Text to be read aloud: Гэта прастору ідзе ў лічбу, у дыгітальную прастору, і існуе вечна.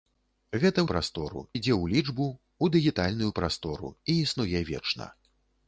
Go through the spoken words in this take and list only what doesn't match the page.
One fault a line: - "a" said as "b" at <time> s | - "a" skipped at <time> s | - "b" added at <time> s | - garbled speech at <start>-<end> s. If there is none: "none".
none